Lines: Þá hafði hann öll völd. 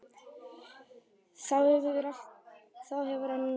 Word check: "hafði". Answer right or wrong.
wrong